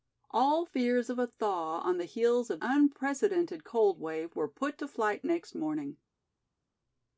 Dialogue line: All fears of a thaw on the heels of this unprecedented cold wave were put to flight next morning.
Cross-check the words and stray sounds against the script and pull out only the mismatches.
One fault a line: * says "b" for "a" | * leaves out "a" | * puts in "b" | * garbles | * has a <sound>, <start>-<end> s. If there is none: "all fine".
* leaves out "this"